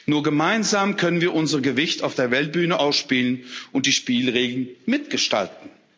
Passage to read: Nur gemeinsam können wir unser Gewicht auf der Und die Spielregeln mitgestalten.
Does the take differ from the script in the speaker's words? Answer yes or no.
yes